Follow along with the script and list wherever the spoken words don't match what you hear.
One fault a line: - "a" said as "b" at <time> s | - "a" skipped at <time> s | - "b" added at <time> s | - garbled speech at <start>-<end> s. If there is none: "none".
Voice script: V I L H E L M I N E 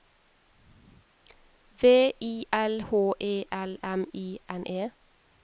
none